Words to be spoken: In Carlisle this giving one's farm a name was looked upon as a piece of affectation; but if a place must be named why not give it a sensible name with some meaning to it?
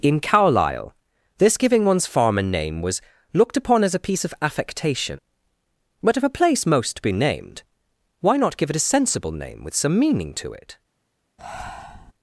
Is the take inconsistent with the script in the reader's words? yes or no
yes